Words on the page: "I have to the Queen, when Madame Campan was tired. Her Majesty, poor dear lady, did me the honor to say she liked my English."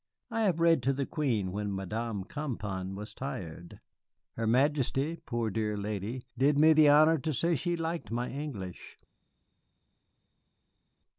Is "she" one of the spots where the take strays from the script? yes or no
no